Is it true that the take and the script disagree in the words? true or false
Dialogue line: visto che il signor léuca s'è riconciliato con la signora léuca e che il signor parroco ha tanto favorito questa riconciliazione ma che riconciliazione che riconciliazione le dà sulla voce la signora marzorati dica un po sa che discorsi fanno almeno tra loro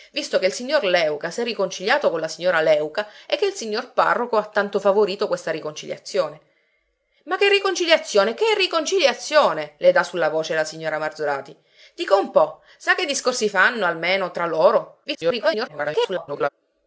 true